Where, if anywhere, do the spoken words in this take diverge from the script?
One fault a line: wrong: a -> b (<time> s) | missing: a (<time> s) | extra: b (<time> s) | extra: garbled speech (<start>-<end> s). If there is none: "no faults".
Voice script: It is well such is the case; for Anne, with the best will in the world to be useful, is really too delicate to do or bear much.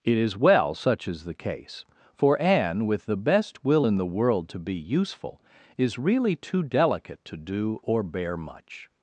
no faults